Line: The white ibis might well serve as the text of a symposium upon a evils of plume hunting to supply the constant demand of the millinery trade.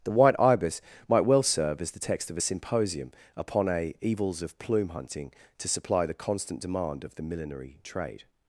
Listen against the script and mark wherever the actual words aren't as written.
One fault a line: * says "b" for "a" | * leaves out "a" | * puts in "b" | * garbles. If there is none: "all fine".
all fine